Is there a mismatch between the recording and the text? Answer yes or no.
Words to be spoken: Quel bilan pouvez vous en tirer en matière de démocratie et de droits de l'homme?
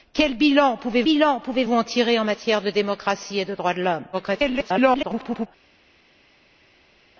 yes